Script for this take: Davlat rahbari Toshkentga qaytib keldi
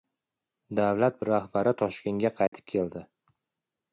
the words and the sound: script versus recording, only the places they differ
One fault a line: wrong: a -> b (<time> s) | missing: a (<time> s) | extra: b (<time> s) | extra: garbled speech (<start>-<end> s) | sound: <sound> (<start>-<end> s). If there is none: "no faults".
sound: dropout (2.5-2.5 s)